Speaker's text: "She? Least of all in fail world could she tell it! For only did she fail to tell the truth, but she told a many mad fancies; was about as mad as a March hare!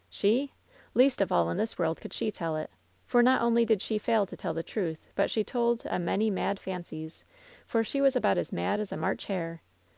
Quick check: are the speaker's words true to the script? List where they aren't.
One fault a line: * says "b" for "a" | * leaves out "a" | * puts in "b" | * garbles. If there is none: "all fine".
* says "this" for "fail"
* puts in "not"
* puts in "for she"